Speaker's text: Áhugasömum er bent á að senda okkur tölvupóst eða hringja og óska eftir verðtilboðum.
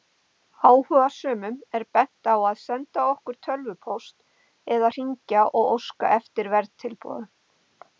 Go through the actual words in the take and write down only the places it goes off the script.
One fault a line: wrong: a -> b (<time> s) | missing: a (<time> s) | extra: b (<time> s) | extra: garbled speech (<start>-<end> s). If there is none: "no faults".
no faults